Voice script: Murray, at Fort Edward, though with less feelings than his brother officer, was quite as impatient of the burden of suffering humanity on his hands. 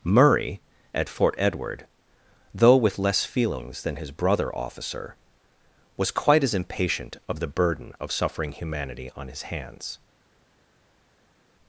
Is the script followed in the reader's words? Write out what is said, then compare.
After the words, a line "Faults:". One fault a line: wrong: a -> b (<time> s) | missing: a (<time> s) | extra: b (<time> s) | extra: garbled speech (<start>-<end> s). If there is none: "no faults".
Murray, at Fort Edward, though with less feelings than his brother officer, was quite as impatient of the burden of suffering humanity on his hands.
Faults:
no faults